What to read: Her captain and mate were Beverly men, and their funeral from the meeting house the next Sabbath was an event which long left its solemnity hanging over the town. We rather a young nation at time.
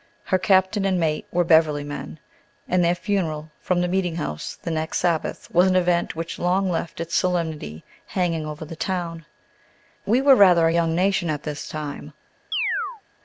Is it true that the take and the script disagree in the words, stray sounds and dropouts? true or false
true